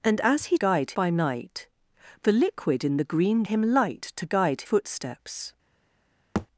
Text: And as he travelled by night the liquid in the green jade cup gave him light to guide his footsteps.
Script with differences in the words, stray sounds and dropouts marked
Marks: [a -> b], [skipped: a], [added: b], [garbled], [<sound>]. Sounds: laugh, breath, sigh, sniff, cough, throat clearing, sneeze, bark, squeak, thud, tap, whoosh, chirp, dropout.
And as he [travelled -> guide] by night the liquid in the green [skipped: jade cup gave] him light to guide [skipped: his] footsteps. [thud]